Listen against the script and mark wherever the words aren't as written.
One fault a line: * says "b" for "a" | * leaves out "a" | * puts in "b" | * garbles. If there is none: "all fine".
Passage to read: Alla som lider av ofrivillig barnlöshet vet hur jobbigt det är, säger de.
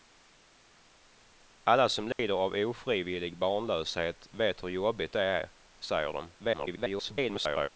* garbles